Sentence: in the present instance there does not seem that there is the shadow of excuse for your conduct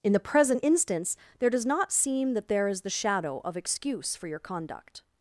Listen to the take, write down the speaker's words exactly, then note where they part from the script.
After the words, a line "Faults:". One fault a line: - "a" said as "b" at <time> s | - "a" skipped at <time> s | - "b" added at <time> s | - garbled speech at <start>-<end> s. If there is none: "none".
in the present instance there does not seem that there is the shadow of excuse for your conduct
Faults:
none